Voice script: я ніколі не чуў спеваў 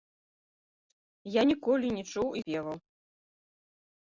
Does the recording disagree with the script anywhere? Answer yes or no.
no